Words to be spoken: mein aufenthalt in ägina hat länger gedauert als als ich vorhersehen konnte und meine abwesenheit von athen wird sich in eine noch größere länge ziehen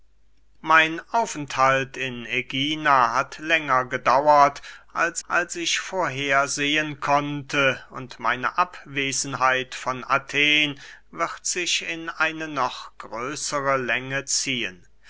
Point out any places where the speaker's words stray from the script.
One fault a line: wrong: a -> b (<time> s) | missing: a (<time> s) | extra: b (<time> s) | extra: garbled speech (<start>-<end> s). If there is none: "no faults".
no faults